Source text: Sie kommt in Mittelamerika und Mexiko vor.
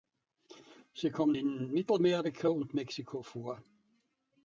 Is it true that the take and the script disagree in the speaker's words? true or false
false